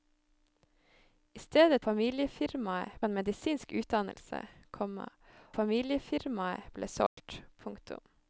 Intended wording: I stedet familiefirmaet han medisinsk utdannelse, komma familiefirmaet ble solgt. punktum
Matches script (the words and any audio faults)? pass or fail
fail